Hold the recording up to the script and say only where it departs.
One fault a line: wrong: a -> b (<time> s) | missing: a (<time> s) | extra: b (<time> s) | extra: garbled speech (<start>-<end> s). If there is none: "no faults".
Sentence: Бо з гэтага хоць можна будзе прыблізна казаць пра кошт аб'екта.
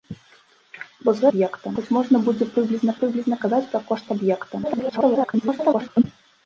wrong: гэтага -> аб'екта (1.3 s)
extra: прыблізна (3.0 s)
extra: garbled speech (4.6-6.0 s)